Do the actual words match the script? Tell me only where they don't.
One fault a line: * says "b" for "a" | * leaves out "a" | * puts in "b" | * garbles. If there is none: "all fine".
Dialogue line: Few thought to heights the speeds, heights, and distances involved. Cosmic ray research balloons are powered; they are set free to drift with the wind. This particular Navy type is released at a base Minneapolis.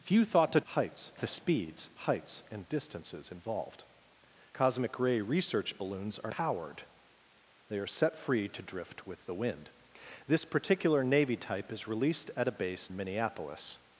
all fine